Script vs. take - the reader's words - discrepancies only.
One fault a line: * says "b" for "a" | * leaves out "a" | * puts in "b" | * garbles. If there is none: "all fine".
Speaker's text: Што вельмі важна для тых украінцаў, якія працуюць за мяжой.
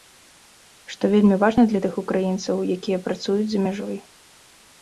all fine